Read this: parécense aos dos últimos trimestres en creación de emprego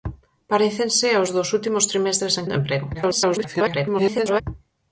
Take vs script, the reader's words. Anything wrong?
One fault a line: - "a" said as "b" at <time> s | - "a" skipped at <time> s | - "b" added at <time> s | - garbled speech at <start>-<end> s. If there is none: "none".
- "creación" skipped at 2.5 s
- garbled speech at 2.9-4.4 s